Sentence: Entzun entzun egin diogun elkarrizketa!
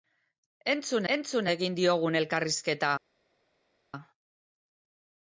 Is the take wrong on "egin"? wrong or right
right